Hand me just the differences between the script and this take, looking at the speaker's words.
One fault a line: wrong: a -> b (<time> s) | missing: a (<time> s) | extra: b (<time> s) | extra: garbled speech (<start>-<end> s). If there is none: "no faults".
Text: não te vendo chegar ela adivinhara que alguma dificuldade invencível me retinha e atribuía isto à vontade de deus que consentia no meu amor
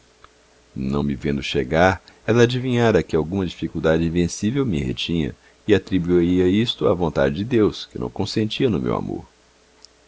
wrong: te -> me (1.0 s)
extra: não (8.0 s)